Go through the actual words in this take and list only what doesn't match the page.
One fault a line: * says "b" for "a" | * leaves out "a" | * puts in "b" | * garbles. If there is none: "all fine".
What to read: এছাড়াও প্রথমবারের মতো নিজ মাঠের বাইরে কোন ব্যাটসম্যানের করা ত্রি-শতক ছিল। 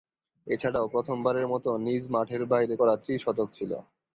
* leaves out "কোন ব্যাটসম্যানের"